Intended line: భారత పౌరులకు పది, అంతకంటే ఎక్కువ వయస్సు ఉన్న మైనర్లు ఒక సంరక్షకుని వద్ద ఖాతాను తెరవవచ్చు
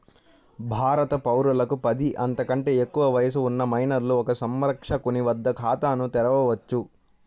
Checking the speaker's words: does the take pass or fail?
pass